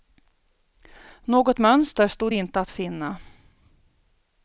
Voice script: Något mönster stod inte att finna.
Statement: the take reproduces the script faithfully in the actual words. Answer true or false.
true